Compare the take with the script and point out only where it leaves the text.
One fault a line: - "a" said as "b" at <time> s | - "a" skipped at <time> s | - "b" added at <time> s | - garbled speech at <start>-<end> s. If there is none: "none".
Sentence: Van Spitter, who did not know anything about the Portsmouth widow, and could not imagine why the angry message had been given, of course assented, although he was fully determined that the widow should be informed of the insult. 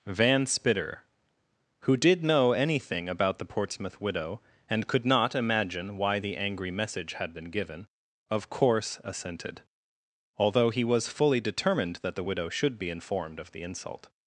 - "not" skipped at 2.2 s